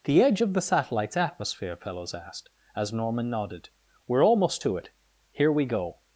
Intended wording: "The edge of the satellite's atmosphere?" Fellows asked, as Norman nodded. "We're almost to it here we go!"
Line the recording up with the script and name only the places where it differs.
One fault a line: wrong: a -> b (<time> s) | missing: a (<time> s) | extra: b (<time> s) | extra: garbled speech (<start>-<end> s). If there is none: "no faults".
no faults